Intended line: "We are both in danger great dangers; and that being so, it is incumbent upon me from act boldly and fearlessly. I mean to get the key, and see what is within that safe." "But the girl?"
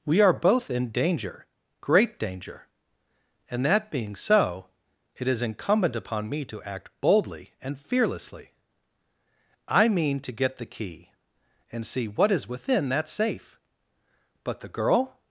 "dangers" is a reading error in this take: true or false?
true